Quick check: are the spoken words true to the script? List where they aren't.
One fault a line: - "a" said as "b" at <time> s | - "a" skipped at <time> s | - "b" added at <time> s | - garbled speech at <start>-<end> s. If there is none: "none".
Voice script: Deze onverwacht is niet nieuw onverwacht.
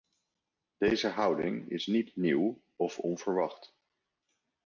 - "onverwacht" said as "houding" at 1.1 s
- "of" added at 2.8 s